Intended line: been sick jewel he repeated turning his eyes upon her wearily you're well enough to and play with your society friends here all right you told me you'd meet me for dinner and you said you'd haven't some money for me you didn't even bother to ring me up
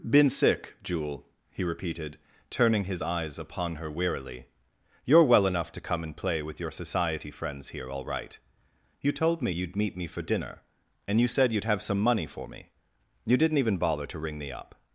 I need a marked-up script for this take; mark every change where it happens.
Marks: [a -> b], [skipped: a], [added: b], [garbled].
been sick jewel he repeated turning his eyes upon her wearily you're well enough to [added: come] and play with your society friends here all right you told me you'd meet me for dinner and you said you'd [haven't -> have] some money for me you didn't even bother to ring me up